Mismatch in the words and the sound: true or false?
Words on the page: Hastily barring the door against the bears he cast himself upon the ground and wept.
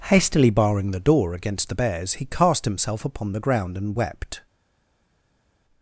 false